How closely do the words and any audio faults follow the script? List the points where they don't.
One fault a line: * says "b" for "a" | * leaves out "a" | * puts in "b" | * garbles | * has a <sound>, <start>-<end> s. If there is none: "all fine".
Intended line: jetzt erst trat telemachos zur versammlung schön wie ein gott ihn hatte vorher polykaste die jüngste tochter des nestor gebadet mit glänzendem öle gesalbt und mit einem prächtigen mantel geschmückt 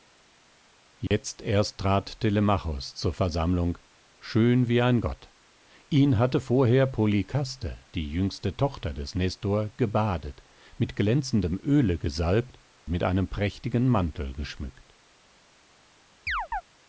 * has a dropout, 1.1-1.1 s
* leaves out "und"
* has a chirp, 16.3-16.6 s